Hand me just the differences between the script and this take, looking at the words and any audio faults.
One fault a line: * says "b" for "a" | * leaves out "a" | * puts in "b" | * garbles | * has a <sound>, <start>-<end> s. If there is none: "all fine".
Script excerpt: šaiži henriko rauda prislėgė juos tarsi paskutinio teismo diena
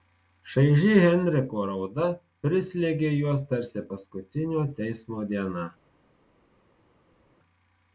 all fine